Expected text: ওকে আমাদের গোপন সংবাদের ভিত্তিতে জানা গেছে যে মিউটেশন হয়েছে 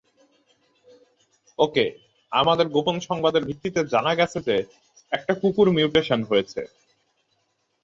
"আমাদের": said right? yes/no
yes